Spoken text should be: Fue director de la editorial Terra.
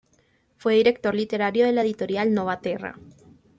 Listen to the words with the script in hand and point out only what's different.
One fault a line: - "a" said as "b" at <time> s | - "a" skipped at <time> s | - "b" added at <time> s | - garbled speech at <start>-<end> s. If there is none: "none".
- "literario" added at 1.1 s
- "Nova" added at 2.3 s